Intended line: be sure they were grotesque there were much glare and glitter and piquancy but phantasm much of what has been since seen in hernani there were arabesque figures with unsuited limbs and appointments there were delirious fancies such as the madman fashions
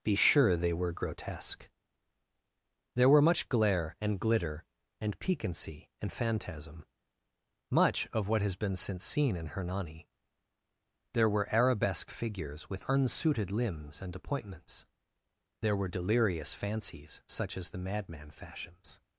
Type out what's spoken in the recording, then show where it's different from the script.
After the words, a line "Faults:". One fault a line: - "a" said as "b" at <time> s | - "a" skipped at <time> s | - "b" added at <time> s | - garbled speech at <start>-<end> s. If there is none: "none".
be sure they were grotesque there were much glare and glitter and piquancy and phantasm much of what has been since seen in hernani there were arabesque figures with unsuited limbs and appointments there were delirious fancies such as the madman fashions
Faults:
- "but" said as "and" at 6.0 s